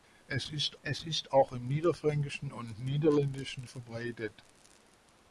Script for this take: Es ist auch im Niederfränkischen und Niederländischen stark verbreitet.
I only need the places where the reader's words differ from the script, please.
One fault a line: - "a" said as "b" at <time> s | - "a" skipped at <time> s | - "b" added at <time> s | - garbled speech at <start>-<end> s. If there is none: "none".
- "es ist" added at 0.8 s
- "stark" skipped at 3.7 s